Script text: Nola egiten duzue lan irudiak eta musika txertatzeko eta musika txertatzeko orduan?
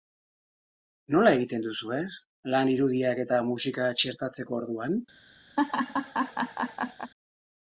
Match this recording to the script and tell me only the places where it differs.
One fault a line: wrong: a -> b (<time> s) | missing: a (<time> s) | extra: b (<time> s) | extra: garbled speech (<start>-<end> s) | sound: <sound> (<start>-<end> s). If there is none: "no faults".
missing: eta musika txertatzeko (4.6 s)
sound: laugh (5.6-7.1 s)